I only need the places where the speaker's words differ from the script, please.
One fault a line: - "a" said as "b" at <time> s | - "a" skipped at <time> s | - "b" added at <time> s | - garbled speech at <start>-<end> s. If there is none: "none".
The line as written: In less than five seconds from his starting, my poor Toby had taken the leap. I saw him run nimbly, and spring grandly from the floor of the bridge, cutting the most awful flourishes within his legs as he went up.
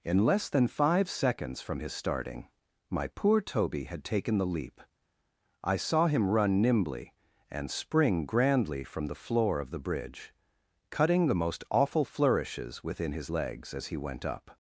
none